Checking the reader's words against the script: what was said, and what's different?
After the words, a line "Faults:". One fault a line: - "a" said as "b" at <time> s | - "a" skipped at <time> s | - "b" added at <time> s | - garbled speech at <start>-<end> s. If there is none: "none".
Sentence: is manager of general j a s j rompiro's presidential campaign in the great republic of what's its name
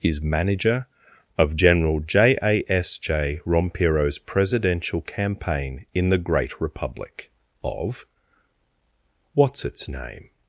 is manager of general j a s j rompiro's presidential campaign in the great republic of what's its name
Faults:
none